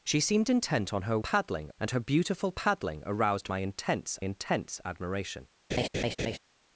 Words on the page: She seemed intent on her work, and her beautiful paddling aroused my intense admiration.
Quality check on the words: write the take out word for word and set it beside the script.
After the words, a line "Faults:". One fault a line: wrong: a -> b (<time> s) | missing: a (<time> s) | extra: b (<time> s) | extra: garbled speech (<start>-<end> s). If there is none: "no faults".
She seemed intent on her paddling, and her beautiful paddling aroused my intense intense admiration.
Faults:
wrong: work -> paddling (1.2 s)
extra: intense (4.2 s)